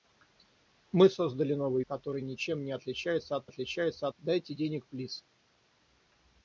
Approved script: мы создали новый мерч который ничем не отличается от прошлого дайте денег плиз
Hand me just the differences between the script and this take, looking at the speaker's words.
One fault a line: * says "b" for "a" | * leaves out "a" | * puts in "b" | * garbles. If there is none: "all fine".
* leaves out "мерч"
* says "отличается" for "прошлого"